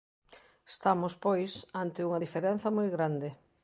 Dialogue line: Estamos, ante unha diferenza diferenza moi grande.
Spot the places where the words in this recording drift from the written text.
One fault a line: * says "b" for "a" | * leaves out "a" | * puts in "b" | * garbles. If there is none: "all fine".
* puts in "pois"
* leaves out "diferenza"